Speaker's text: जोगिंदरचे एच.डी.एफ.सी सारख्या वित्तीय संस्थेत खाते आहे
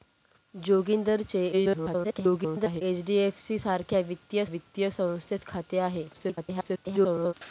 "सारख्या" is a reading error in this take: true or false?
false